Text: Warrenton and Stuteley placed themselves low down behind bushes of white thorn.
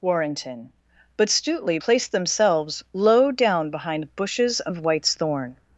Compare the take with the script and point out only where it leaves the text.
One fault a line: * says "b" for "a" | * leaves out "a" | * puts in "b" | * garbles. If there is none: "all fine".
* says "but" for "and"
* says "whites" for "white"